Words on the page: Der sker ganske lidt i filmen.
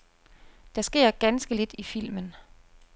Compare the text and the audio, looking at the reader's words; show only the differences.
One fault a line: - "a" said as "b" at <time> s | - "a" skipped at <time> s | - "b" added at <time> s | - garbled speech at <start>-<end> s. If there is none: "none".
none